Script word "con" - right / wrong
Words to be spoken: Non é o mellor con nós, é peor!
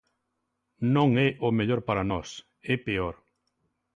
wrong